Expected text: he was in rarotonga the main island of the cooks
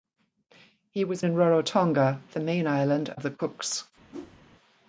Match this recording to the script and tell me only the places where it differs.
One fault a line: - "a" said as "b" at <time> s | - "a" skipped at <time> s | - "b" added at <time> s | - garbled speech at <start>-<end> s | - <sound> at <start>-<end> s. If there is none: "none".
- whoosh at 4.1-4.4 s